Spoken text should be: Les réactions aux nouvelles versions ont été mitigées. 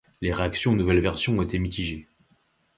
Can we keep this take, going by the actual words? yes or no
yes